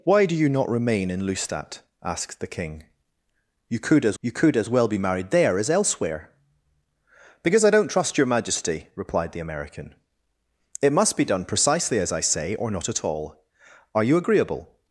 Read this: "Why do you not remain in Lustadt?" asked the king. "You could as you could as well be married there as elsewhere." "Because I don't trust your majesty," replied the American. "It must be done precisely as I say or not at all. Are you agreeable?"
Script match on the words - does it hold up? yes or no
yes